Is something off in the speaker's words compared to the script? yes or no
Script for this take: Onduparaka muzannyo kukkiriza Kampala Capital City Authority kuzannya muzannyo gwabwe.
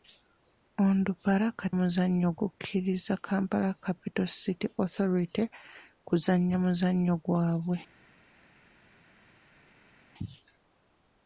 no